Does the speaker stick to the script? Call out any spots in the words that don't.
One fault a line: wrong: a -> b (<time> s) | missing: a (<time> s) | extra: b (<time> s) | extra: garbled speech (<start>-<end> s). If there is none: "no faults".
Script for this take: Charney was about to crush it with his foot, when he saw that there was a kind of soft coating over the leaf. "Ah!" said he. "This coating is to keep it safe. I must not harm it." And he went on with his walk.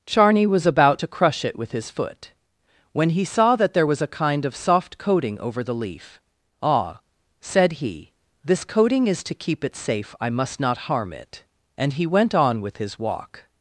no faults